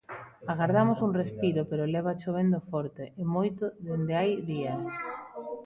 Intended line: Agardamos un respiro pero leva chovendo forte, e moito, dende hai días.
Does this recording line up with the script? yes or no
yes